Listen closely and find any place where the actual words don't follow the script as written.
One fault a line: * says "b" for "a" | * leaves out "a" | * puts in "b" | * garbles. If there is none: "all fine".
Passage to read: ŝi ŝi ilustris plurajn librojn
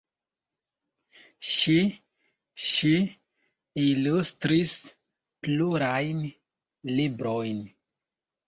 all fine